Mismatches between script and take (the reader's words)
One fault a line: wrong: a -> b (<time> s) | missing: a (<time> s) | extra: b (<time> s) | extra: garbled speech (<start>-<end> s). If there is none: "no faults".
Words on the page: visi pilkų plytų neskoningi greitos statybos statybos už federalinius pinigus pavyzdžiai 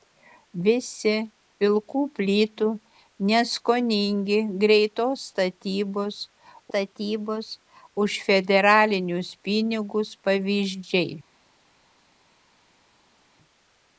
no faults